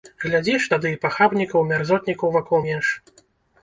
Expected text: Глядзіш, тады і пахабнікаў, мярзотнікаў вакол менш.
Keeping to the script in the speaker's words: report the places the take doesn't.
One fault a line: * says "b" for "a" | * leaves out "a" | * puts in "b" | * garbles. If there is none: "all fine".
all fine